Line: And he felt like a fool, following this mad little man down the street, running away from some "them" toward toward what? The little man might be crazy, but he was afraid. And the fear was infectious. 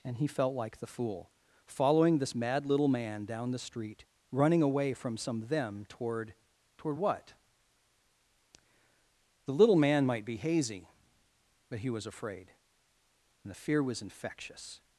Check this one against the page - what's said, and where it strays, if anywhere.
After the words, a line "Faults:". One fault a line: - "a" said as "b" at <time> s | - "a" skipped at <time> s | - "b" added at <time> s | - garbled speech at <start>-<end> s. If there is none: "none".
And he felt like the fool, following this mad little man down the street, running away from some "them" toward toward what? The little man might be hazy, but he was afraid. And the fear was infectious.
Faults:
- "a" said as "the" at 0.8 s
- "crazy" said as "hazy" at 10.4 s